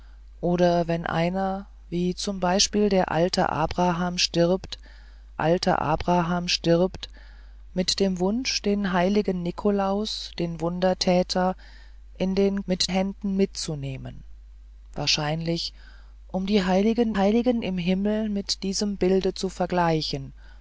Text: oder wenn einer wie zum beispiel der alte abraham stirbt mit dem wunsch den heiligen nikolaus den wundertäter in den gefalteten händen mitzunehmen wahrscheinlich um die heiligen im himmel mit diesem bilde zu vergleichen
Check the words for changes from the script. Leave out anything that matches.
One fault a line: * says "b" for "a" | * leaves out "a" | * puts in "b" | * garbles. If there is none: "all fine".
* puts in "alte abraham stirbt"
* says "mit" for "gefalteten"
* puts in "heiligen"